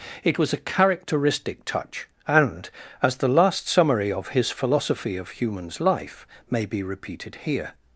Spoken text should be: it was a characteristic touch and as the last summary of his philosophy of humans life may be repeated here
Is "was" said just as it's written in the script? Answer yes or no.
yes